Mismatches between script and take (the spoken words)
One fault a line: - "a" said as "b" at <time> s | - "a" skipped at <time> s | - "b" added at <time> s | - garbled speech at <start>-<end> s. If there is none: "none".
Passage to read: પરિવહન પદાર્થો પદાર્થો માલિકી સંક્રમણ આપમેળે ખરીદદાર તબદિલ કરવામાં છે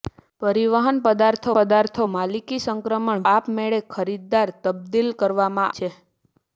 none